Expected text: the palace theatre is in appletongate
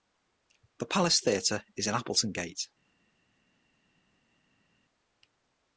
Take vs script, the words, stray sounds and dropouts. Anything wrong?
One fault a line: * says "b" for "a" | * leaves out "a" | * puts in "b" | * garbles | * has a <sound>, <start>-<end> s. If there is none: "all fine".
all fine